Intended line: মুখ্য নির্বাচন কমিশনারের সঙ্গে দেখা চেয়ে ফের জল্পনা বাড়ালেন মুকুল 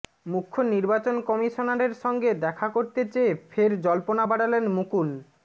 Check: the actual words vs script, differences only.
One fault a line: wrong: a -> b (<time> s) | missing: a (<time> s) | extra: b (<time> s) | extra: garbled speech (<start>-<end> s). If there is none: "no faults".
extra: করতে (2.7 s)